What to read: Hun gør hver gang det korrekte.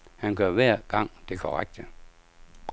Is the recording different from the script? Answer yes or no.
yes